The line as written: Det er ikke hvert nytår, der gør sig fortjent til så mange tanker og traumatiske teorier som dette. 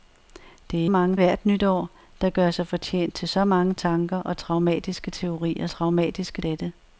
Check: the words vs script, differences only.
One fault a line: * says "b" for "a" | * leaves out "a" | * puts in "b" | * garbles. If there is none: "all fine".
* says "mange" for "ikke"
* says "traumatiske" for "som"